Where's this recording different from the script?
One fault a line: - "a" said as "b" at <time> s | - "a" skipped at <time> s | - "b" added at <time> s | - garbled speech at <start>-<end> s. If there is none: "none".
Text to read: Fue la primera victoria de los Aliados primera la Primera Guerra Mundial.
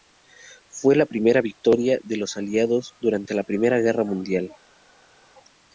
- "primera" said as "durante" at 3.0 s